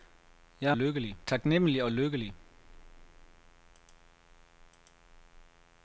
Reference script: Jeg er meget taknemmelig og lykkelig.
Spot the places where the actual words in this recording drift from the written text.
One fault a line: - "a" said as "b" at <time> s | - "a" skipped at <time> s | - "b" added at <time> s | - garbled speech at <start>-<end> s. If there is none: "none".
- "meget" said as "lykkelig" at 0.7 s